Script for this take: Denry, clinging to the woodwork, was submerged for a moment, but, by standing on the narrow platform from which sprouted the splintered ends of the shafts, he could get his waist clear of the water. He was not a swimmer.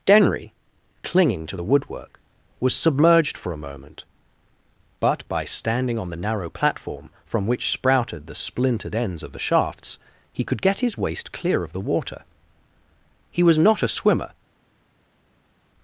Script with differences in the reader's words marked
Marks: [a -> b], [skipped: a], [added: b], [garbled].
Denry, clinging to the woodwork, was submerged for a moment, but, by standing on the narrow platform from which sprouted the splintered ends of the shafts, he could get his waist clear of the water. He was not a swimmer.